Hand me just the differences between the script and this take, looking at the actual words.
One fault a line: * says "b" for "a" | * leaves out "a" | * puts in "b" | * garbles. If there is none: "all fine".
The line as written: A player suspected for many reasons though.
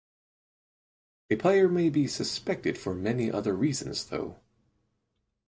* puts in "may be"
* puts in "other"